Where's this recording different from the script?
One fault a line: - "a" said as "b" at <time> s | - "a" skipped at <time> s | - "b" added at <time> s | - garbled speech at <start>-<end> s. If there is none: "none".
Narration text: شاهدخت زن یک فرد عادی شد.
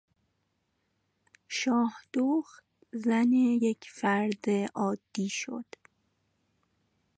none